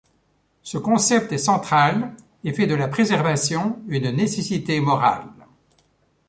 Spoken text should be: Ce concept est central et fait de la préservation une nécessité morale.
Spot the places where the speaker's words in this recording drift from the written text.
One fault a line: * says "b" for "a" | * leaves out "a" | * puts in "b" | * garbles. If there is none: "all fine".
all fine